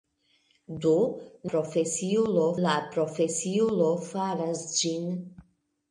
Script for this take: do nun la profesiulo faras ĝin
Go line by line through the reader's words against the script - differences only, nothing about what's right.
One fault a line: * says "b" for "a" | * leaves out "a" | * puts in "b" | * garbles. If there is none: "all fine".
* says "profesiulo" for "nun"